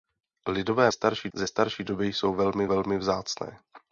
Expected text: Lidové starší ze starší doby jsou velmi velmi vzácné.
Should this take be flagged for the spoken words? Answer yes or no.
no